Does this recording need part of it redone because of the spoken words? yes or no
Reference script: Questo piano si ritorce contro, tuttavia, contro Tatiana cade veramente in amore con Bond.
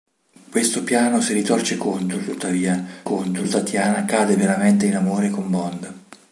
no